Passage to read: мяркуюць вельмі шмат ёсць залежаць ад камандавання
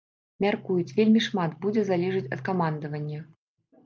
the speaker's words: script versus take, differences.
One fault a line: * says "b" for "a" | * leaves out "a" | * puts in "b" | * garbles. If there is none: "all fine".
* says "будзе" for "ёсць"